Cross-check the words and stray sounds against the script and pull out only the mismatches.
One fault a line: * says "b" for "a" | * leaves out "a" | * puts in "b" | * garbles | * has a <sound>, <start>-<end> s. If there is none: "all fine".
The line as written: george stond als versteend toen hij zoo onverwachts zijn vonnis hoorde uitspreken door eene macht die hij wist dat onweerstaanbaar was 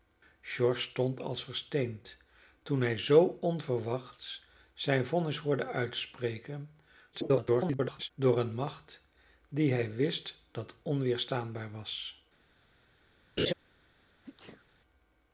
* garbles
* has a laugh, 13.4-13.5 s
* has a sneeze, 14.2-14.7 s